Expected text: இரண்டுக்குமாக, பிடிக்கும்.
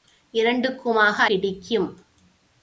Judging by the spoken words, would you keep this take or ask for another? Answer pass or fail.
pass